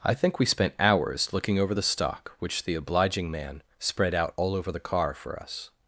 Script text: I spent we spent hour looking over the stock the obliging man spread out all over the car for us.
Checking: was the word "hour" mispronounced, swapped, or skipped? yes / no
yes